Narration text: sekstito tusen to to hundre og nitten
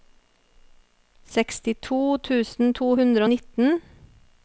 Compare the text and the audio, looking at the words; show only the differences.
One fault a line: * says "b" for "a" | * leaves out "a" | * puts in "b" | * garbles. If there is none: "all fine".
* leaves out "to"